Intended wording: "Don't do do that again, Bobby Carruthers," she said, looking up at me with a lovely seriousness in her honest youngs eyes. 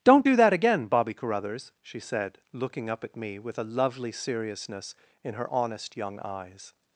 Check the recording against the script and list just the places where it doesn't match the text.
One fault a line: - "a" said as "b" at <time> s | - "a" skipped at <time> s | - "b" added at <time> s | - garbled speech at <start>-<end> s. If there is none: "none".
- "do" skipped at 0.3 s
- "youngs" said as "young" at 6.0 s